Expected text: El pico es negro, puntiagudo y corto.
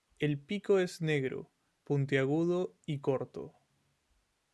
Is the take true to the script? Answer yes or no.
yes